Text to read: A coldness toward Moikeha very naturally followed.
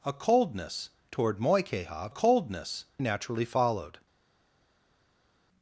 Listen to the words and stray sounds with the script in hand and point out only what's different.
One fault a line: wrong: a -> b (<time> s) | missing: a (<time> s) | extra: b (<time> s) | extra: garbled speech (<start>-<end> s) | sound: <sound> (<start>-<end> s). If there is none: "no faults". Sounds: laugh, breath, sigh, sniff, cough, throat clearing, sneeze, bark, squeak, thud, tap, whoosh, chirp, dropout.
wrong: very -> coldness (2.1 s)